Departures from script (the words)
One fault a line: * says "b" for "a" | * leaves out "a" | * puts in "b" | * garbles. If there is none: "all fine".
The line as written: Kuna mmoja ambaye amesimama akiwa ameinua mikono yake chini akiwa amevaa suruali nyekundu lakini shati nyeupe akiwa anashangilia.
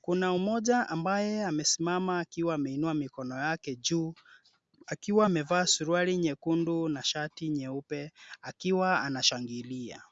* says "juu" for "chini"
* says "na" for "lakini"